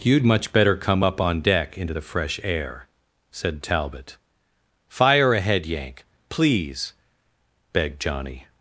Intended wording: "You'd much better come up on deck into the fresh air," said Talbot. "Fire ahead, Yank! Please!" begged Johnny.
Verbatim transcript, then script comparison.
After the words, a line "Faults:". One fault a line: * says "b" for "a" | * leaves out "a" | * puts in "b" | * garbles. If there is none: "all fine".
"You'd much better come up on deck into the fresh air," said Talbot. "Fire ahead, Yank! Please!" begged Johnny.
Faults:
all fine